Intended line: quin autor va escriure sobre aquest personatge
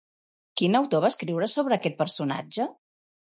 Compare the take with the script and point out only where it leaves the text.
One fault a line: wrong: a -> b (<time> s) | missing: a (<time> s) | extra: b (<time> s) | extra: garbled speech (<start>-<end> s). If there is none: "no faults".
no faults